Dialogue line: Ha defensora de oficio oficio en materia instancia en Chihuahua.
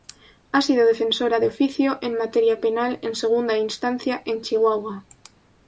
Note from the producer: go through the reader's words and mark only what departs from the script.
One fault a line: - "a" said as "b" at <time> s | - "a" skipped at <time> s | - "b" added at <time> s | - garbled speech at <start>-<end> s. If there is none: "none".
- "sido" added at 0.6 s
- "oficio" said as "en materia penal" at 2.0 s
- "materia" said as "segunda" at 3.1 s